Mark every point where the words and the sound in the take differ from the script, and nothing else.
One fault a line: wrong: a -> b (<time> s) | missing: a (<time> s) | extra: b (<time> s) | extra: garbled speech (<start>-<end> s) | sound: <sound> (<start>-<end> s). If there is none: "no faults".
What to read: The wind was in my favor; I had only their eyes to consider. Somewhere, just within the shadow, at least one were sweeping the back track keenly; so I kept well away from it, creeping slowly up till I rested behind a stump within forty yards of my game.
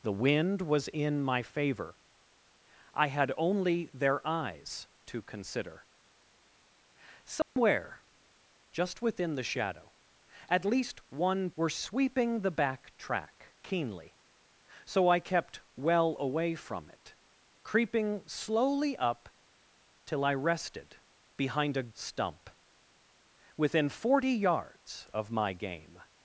sound: dropout (7.4-7.6 s)